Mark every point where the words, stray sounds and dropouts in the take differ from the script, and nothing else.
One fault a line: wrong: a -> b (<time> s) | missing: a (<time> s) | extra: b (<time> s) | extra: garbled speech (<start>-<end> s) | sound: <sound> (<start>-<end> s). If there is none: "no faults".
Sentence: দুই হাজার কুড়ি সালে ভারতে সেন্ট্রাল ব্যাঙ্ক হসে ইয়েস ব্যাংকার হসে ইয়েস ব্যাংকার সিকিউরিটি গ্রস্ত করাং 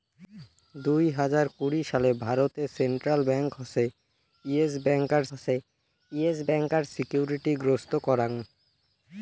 no faults